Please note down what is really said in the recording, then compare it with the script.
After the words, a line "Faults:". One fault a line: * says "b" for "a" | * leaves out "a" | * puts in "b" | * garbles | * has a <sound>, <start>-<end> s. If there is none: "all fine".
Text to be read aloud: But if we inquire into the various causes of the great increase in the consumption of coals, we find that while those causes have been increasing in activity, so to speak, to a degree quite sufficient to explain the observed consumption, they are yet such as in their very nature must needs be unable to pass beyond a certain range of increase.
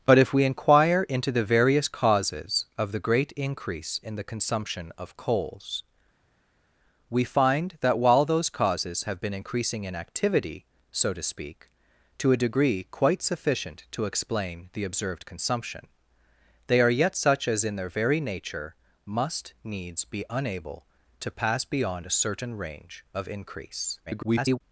But if we inquire into the various causes of the great increase in the consumption of coals, we find that while those causes have been increasing in activity, so to speak, to a degree quite sufficient to explain the observed consumption, they are yet such as in their very nature must needs be unable to pass beyond a certain range of increase. [garbled]
Faults:
* garbles